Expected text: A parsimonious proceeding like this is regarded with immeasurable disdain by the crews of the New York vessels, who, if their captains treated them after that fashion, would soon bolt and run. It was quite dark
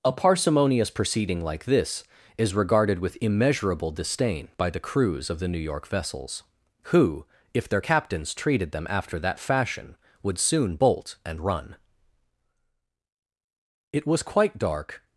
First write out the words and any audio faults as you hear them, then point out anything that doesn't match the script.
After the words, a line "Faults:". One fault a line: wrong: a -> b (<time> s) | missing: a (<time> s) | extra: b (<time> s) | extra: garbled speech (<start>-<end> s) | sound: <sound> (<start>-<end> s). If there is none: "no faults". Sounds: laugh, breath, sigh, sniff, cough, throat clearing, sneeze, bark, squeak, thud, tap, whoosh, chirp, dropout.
A parsimonious proceeding like this is regarded with immeasurable disdain by the crews of the New York vessels, who, if their captains treated them after that fashion, would soon bolt and run. It was quite dark
Faults:
no faults